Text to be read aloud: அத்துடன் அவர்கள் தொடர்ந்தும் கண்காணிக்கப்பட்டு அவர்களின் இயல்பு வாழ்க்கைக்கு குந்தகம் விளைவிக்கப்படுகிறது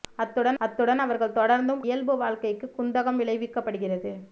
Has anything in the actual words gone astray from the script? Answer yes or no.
yes